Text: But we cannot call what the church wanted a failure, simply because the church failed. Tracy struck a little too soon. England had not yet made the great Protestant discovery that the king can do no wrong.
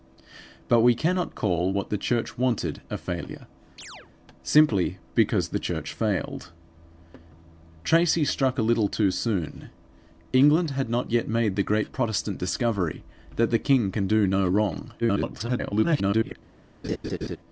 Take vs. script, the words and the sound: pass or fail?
fail